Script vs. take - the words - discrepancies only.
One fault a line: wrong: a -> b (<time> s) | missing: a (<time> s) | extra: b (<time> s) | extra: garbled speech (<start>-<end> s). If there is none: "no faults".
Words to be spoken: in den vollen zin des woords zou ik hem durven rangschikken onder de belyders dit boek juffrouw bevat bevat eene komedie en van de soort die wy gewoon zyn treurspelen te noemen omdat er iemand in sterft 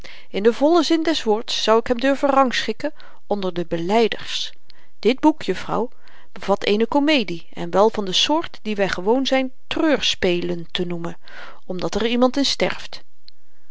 missing: bevat (6.6 s)
extra: wel (7.7 s)